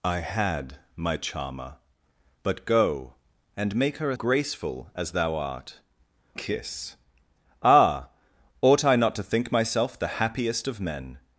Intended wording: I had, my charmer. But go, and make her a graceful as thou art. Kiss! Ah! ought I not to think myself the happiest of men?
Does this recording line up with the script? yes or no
yes